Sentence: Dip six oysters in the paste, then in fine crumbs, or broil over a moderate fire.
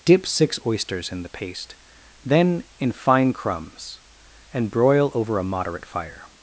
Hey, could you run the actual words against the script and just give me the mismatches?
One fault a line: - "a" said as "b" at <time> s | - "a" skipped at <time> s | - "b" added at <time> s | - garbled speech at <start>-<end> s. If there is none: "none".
- "or" said as "and" at 4.5 s